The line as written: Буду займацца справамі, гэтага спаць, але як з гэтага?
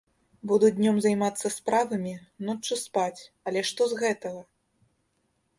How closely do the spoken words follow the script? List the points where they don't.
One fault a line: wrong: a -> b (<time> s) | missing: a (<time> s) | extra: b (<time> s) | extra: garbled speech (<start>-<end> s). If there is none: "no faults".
extra: днём (0.8 s)
wrong: гэтага -> ноччу (2.5 s)
wrong: як -> што (3.7 s)